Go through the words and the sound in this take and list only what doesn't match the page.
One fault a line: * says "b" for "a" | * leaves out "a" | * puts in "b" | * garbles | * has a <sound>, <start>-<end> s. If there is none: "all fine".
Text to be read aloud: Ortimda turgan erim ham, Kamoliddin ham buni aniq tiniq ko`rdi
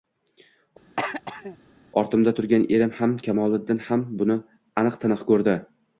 * has a throat clearing, 1.0-1.6 s